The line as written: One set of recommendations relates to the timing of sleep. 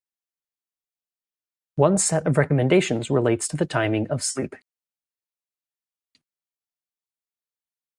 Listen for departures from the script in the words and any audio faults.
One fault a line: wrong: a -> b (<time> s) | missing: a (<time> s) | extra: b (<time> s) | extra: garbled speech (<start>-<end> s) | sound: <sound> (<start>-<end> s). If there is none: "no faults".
no faults